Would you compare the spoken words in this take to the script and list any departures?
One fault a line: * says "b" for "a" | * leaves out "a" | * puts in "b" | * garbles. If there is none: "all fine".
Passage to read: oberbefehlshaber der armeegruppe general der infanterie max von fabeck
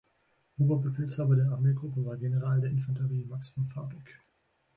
* puts in "war"